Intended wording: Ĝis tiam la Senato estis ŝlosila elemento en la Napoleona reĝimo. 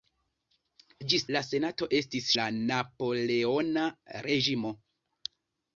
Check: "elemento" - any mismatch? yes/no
yes